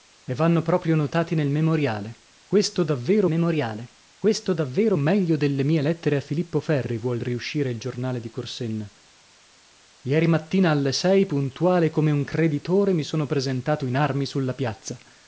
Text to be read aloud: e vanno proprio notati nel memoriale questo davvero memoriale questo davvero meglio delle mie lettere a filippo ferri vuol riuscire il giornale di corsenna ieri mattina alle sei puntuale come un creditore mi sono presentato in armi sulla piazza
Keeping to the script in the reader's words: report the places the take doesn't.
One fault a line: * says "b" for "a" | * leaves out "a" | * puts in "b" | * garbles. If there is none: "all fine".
all fine